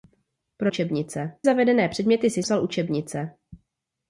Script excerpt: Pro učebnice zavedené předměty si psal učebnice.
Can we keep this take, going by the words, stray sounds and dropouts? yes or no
yes